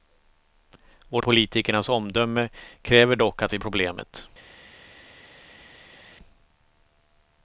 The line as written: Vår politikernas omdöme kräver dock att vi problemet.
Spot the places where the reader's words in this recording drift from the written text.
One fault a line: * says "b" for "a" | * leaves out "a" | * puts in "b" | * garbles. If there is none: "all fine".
all fine